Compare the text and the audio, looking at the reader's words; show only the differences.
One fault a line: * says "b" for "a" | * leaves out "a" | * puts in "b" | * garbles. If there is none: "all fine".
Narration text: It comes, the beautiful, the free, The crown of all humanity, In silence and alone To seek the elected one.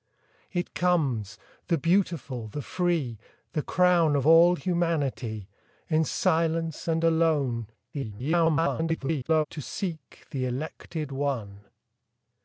* garbles